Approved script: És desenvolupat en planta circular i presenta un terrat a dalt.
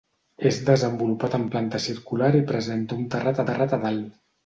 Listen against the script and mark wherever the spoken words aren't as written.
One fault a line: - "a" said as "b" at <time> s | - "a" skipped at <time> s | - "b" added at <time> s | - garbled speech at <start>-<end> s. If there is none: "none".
- "terrat" added at 3.5 s